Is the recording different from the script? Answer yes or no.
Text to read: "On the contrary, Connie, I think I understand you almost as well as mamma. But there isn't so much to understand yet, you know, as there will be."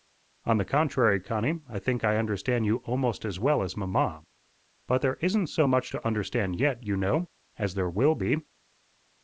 no